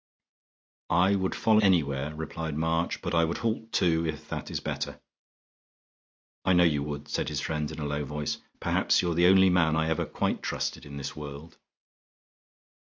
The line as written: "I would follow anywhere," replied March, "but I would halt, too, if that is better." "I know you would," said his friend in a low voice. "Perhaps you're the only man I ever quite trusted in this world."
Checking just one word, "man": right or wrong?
right